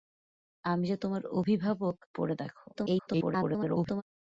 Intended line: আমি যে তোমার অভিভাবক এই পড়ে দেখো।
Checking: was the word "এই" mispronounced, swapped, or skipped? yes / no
yes